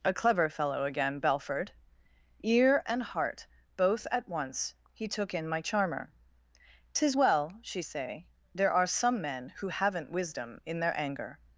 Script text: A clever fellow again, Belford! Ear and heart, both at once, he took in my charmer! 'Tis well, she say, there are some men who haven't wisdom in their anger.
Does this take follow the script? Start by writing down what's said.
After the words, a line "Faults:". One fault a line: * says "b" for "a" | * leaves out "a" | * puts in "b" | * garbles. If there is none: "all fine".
A clever fellow again, Belford! Ear and heart, both at once, he took in my charmer! 'Tis well, she say, there are some men who haven't wisdom in their anger.
Faults:
all fine